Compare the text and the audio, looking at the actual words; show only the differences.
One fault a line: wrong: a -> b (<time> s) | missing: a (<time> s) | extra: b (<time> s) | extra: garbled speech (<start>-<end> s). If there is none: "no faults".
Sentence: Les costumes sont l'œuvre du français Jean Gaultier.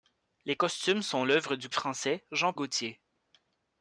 no faults